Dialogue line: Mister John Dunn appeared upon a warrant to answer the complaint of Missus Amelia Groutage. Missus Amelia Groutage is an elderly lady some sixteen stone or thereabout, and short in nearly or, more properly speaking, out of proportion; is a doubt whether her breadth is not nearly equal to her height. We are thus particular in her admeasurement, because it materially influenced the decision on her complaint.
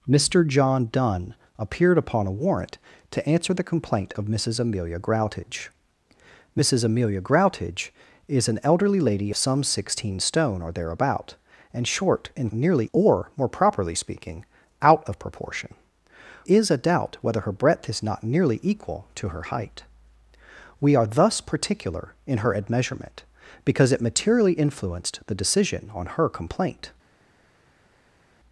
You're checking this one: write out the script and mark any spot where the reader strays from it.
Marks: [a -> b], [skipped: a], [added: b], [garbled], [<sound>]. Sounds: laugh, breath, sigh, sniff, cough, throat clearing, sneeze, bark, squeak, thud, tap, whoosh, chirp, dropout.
Mister John Dunn appeared upon a warrant to answer the complaint of Missus Amelia Groutage. Missus Amelia Groutage is an elderly lady some sixteen stone or thereabout, and short in nearly or, more properly speaking, out of proportion; is a doubt whether her breadth is not nearly equal to her height. We are thus particular in her admeasurement, because it materially influenced the decision on her complaint.